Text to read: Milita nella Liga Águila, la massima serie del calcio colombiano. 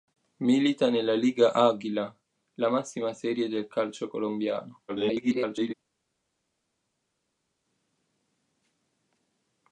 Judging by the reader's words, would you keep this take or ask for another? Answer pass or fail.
fail